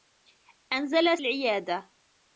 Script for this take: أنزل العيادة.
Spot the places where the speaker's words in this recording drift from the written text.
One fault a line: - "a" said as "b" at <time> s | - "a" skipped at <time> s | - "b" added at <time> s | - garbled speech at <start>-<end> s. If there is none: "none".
none